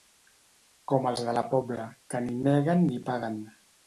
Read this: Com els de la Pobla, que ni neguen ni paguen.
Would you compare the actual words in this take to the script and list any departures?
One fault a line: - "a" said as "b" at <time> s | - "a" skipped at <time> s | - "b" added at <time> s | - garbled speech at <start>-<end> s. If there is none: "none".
none